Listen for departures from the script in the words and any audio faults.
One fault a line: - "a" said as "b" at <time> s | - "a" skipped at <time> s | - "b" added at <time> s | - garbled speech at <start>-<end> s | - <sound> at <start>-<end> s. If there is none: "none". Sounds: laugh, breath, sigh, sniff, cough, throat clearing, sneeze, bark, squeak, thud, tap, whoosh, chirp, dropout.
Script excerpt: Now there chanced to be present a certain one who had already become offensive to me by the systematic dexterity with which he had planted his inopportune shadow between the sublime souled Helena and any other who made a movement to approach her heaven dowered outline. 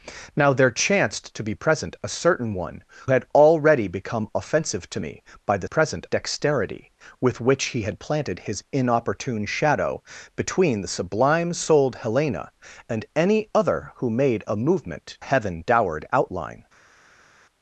- "who" skipped at 2.8 s
- "systematic" said as "present" at 5.6 s
- "to approach her" skipped at 15.2 s